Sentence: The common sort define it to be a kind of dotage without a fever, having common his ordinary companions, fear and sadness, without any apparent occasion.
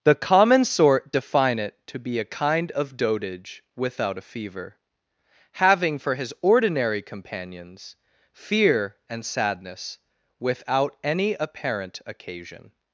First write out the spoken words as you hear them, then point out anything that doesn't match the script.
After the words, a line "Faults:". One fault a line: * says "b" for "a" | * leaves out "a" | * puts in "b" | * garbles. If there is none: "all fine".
The common sort define it to be a kind of dotage without a fever, having for his ordinary companions, fear and sadness, without any apparent occasion.
Faults:
* says "for" for "common"